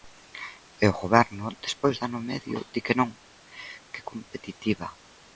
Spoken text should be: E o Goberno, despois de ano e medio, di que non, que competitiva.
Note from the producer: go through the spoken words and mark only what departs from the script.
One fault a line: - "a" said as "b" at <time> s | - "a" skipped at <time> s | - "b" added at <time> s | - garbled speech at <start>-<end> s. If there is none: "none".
none